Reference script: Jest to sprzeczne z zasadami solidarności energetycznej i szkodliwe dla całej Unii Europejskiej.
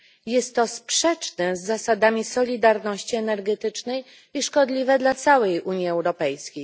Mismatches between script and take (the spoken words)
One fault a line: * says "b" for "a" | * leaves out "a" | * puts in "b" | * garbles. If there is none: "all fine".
all fine